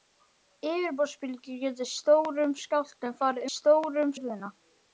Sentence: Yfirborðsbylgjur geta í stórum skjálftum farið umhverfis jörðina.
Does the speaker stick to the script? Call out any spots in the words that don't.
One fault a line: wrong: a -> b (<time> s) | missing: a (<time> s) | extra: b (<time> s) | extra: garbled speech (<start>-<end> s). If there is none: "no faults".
wrong: umhverfis -> stórum (3.5 s)